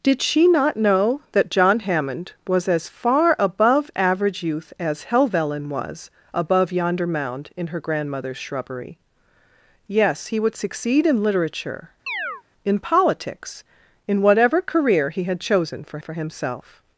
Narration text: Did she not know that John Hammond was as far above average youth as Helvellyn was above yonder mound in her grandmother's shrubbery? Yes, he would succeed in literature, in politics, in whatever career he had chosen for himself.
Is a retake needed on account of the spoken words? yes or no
yes